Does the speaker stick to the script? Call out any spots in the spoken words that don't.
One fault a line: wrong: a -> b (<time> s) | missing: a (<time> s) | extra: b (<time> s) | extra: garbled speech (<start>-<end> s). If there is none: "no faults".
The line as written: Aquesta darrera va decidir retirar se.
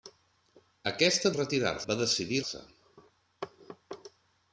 wrong: darrera -> retirar (1.4 s)
missing: retirar (2.4 s)